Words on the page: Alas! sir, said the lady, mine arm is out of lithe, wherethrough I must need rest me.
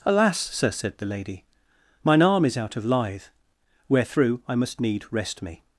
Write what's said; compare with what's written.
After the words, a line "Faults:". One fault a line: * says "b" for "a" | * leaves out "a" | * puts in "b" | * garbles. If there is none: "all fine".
Alas! sir, said the lady, mine arm is out of lithe, wherethrough I must need rest me.
Faults:
all fine